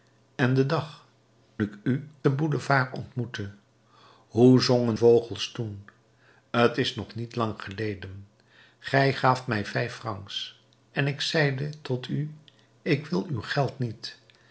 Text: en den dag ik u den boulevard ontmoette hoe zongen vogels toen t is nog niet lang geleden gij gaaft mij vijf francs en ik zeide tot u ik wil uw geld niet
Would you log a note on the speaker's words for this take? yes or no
no